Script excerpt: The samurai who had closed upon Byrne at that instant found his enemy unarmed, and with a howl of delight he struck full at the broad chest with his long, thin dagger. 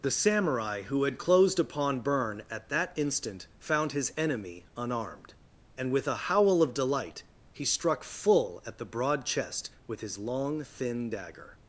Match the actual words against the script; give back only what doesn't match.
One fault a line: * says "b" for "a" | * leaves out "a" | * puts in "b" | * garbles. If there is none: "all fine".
all fine